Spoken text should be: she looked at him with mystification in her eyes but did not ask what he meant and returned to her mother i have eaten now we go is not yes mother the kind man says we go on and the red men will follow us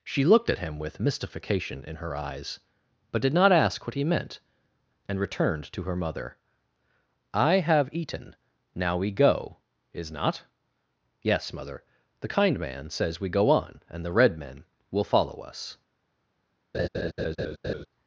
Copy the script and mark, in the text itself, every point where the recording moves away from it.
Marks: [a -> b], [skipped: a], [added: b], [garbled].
she looked at him with mystification in her eyes but did not ask what he meant and returned to her mother i have eaten now we go is not yes mother the kind man says we go on and the red men will follow us